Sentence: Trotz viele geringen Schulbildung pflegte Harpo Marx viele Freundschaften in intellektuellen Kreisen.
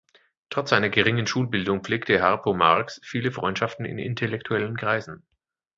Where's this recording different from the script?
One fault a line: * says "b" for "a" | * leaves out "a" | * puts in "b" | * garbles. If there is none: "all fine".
* says "seiner" for "viele"